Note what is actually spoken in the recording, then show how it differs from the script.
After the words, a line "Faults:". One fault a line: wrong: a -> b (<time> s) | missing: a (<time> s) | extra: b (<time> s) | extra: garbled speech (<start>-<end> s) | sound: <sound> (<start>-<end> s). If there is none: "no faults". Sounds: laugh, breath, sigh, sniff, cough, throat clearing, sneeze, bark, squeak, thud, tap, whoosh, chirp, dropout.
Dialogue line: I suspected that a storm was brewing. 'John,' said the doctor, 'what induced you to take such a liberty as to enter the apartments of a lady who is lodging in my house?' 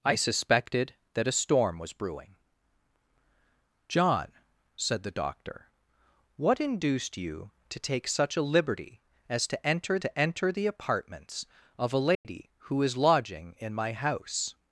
I suspected that a storm was brewing. 'John,' said the doctor, 'what induced you to take such a liberty as to enter to enter the apartments of a lady who is lodging in my house?'
Faults:
extra: to enter (10.0 s)
sound: dropout (12.1-12.3 s)